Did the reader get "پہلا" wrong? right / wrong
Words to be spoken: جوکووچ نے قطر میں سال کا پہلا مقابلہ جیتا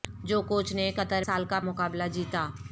wrong